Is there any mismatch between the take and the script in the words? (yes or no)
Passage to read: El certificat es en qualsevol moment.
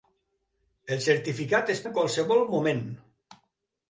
no